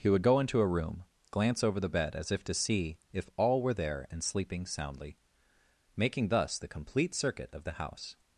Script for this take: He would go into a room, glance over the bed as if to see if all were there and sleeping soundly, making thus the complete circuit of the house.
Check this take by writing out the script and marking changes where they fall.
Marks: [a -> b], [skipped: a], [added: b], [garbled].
He would go into a room, glance over the bed as if to see if all were there and sleeping soundly, making thus the complete circuit of the house.